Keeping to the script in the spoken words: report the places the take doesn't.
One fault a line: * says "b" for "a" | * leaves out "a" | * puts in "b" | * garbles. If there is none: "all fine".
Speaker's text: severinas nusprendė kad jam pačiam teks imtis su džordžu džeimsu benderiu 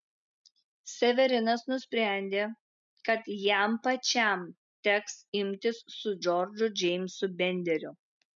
all fine